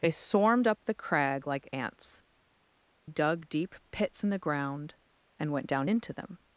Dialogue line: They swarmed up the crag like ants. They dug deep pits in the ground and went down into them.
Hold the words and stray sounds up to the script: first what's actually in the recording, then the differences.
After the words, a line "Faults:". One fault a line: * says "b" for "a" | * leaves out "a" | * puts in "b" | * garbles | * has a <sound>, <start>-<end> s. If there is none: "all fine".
They swarmed up the crag like ants. Dug deep pits in the ground and went down into them.
Faults:
* leaves out "They"